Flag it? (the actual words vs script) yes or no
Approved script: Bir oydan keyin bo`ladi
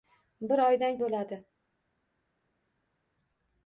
yes